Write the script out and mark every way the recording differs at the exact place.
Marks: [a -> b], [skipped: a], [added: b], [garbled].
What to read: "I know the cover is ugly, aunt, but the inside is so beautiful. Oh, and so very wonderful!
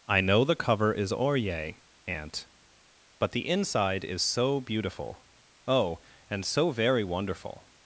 "I know the cover is [ugly, -> orye] aunt, but the inside is so beautiful. Oh, and so very wonderful!